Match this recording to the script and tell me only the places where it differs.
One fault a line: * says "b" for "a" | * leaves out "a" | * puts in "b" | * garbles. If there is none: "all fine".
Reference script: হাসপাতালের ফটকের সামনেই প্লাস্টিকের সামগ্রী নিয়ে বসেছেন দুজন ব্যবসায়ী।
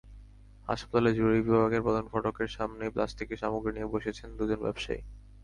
* puts in "জরুরি বিভাগের প্রধান"